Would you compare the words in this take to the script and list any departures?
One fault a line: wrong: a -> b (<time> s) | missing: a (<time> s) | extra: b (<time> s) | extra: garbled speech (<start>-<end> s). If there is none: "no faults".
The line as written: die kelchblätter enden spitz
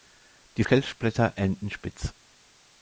no faults